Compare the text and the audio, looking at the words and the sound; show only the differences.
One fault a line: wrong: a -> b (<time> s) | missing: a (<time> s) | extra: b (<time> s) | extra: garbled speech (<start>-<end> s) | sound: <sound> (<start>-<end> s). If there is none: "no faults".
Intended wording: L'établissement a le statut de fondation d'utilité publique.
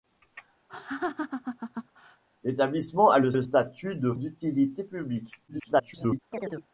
sound: laugh (0.7-2.2 s)
extra: le (3.3 s)
missing: fondation (4.1 s)
extra: garbled speech (5.5-6.2 s)
sound: chirp (6.3-6.7 s)